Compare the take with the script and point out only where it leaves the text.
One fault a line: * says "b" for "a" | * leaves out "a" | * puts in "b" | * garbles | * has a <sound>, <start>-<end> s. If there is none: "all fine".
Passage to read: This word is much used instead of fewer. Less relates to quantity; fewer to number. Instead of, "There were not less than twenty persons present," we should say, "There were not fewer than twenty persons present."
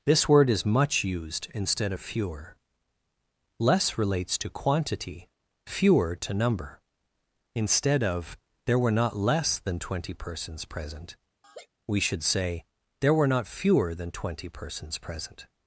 * has a laugh, 11.4-11.7 s